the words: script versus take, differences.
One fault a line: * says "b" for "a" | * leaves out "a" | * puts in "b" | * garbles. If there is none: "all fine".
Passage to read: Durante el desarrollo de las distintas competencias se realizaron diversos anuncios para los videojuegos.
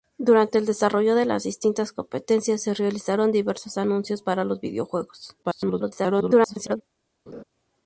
* garbles